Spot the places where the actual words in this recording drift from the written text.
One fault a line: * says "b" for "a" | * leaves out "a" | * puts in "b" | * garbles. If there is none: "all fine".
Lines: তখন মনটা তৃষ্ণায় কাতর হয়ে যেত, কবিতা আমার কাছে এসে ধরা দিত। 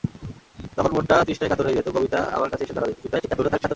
* garbles